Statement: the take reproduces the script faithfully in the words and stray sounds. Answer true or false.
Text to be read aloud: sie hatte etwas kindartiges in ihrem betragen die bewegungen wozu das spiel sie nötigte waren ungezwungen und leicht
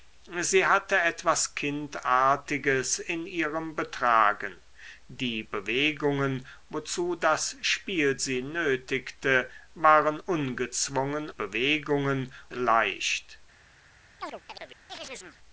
false